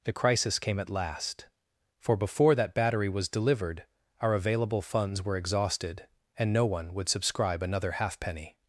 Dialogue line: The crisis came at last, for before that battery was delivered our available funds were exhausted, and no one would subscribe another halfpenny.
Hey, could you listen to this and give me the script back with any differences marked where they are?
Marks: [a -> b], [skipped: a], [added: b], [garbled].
The crisis came at last, for before that battery was delivered our available funds were exhausted, and no one would subscribe another halfpenny.